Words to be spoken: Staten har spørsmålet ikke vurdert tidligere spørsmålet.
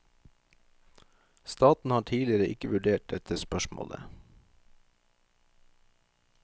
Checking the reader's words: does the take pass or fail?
fail